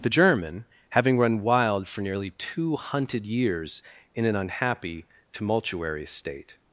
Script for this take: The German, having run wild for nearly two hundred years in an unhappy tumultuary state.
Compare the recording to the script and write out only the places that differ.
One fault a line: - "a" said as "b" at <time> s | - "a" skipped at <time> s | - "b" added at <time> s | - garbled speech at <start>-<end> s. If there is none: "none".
- "hundred" said as "hunted" at 2.8 s